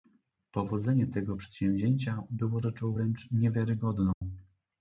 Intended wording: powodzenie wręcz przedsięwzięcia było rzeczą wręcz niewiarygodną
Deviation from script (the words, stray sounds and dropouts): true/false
true